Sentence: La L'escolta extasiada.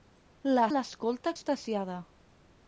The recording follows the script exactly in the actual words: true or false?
true